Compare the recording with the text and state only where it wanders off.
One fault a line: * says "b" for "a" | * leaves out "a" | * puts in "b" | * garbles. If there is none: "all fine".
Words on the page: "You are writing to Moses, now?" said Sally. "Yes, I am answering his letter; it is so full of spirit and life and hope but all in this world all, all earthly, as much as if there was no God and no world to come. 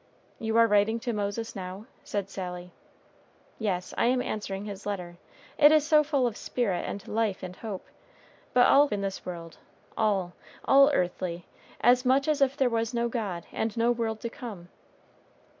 all fine